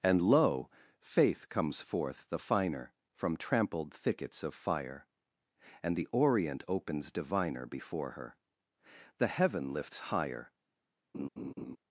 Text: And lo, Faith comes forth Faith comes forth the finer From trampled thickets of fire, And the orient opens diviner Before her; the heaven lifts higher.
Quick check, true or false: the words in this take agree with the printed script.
false